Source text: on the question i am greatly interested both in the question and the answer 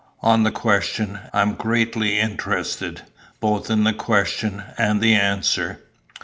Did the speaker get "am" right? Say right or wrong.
right